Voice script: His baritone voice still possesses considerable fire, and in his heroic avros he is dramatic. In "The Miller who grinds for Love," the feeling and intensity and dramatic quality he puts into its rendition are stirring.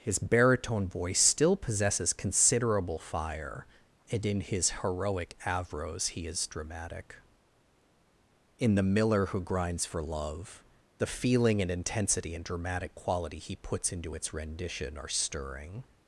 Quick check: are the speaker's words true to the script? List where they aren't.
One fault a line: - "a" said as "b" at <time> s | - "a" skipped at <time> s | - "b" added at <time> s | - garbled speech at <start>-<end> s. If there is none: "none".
none